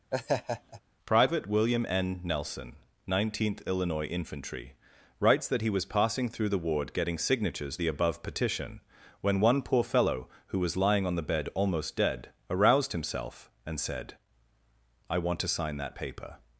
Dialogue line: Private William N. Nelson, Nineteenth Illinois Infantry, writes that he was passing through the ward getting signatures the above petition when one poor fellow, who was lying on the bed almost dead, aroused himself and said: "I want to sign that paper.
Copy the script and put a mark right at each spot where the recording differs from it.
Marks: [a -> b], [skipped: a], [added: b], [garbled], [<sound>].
[laugh] Private William N. Nelson, Nineteenth Illinois Infantry, writes that he was passing through the ward getting signatures the above petition when one poor fellow, who was lying on the bed almost dead, aroused himself and said: "I want to sign that paper.